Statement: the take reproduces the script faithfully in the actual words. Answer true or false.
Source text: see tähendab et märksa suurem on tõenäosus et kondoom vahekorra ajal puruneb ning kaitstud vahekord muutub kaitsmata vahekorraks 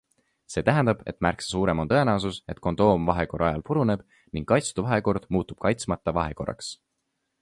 true